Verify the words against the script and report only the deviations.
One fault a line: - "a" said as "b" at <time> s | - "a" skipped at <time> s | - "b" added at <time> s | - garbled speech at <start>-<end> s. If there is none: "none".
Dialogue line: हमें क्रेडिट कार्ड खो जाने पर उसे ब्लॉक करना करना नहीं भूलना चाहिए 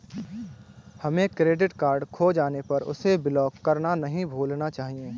- "करना" skipped at 4.0 s